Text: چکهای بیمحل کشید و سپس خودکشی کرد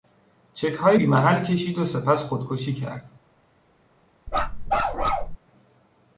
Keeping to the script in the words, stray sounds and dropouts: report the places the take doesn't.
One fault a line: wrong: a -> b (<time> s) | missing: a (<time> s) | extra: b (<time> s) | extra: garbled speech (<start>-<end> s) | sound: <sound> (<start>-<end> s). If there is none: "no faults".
sound: bark (4.3-5.4 s)